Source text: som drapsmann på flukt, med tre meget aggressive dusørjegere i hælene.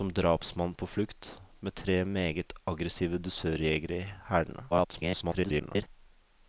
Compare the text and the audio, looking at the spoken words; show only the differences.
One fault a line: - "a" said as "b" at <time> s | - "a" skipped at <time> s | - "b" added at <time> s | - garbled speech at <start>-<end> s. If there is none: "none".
- garbled speech at 4.7-5.9 s